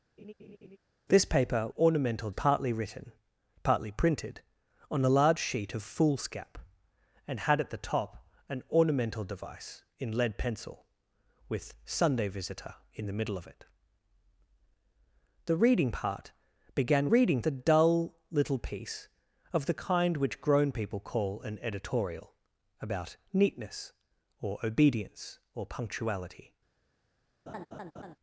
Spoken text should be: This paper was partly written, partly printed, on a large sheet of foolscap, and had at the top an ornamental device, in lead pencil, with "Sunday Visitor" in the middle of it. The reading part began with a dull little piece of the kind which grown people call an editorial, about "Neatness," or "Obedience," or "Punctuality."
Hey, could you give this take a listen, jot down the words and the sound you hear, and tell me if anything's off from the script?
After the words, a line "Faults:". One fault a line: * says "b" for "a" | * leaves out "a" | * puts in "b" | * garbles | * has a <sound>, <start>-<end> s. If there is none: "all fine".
This paper ornamental partly written, partly printed, on a large sheet of foolscap, and had at the top an ornamental device, in lead pencil, with "Sunday Visitor" in the middle of it. The reading part began reading a dull little piece of the kind which grown people call an editorial, about "Neatness," or "Obedience," or "Punctuality."
Faults:
* has a laugh, 0.2-0.8 s
* says "ornamental" for "was"
* says "reading" for "with"
* has a laugh, 27.5-28.2 s